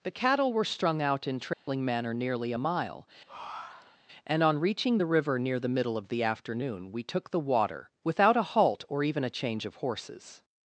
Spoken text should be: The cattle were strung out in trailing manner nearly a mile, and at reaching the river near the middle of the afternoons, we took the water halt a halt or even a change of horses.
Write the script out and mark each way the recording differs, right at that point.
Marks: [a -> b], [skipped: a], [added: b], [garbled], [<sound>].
The cattle were strung out in trailing [dropout] manner nearly a mile, [breath] and [at -> on] reaching the river near the middle of the [afternoons, -> afternoon] we took the water [halt -> without] a halt or even a change of horses.